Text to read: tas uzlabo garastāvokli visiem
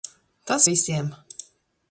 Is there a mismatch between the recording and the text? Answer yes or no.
yes